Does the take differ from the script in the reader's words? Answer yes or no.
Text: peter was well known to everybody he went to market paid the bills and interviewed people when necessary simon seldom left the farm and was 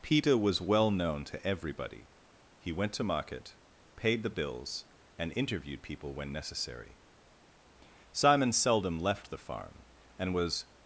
no